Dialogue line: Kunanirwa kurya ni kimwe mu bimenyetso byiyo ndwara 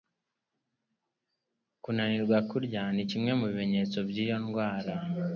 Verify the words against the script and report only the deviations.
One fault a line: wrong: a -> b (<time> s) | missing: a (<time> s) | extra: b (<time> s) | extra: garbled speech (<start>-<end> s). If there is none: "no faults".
no faults